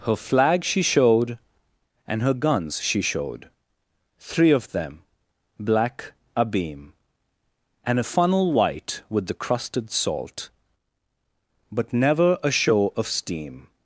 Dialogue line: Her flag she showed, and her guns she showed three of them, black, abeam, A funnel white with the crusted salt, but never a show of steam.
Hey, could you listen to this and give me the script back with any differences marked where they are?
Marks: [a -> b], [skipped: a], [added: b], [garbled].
Her flag she showed, and her guns she showed three of them, black, abeam, [added: And] A funnel white with the crusted salt, but never a show of steam.